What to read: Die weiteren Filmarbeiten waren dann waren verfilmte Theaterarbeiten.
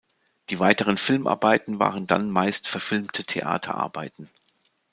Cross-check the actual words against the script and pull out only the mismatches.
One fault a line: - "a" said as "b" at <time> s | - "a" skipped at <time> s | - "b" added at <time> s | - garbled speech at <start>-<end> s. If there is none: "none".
- "waren" said as "meist" at 2.3 s